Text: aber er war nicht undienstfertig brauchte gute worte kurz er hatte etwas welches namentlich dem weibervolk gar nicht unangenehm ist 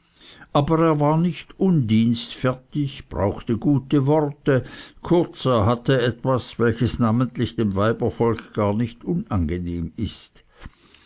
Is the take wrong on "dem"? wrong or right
right